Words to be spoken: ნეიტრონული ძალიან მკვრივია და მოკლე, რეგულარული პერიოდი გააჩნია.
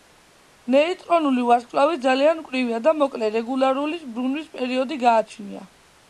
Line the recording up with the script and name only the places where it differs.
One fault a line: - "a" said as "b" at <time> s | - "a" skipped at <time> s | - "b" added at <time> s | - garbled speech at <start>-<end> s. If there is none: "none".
- "ვარსკვლავი" added at 1.5 s
- "ბრუნვის" added at 4.2 s